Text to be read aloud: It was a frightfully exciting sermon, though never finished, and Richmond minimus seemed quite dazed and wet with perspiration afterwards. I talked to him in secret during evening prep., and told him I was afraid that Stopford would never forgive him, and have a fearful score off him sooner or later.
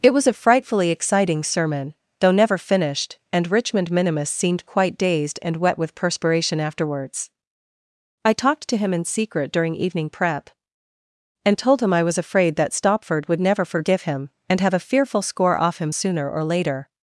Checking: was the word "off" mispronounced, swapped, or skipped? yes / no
no